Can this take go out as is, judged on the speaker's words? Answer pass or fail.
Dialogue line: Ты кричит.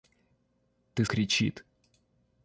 pass